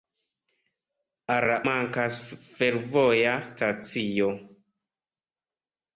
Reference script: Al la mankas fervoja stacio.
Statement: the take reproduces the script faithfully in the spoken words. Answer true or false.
true